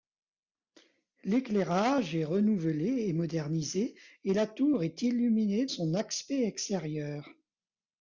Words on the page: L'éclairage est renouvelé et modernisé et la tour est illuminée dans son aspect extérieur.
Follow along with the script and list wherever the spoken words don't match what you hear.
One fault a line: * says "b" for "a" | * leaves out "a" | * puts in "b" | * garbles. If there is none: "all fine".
* leaves out "dans"